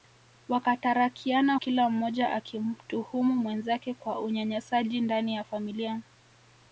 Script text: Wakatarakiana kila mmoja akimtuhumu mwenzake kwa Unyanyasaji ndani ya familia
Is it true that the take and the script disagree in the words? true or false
false